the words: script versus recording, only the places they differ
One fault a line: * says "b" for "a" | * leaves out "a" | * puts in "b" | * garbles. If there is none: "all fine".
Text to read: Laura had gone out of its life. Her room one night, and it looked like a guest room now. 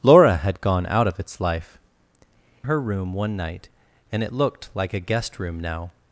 all fine